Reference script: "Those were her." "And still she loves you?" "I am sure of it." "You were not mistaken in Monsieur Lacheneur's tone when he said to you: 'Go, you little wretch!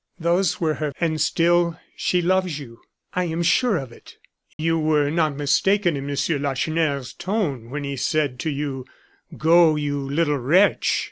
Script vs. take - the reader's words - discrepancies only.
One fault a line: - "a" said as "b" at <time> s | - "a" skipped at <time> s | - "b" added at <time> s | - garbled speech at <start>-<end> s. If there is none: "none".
none